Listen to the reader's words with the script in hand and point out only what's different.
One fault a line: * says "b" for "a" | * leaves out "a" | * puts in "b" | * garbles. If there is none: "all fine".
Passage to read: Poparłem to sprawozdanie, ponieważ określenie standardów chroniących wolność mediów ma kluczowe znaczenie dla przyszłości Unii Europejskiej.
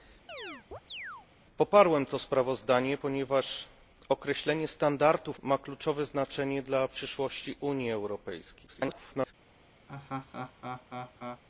* leaves out "chroniących wolność mediów"
* garbles